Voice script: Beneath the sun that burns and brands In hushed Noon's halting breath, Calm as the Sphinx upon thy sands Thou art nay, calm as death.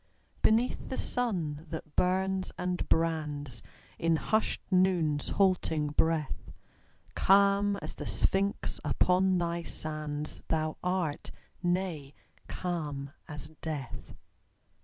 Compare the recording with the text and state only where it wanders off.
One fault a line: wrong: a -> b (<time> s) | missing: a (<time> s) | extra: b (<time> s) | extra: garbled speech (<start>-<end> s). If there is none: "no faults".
no faults